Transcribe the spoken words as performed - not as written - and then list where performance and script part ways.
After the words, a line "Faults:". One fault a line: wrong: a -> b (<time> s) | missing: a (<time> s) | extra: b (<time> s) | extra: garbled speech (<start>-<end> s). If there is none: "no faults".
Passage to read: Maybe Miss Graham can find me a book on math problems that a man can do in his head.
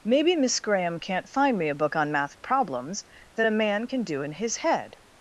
Maybe Miss Graham can't find me a book on math problems that a man can do in his head.
Faults:
wrong: can -> can't (1.0 s)